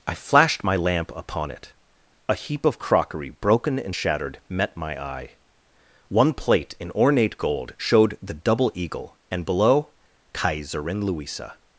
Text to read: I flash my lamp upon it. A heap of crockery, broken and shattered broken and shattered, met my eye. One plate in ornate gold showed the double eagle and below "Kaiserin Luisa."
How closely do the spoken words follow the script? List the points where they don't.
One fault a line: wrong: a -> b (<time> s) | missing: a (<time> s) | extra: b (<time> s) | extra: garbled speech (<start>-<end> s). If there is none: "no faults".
wrong: flash -> flashed (0.1 s)
missing: broken and shattered (4.4 s)